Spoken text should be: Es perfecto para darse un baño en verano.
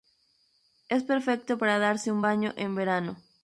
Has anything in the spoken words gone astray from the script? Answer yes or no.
no